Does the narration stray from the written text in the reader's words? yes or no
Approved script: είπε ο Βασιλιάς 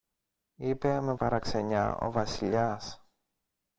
yes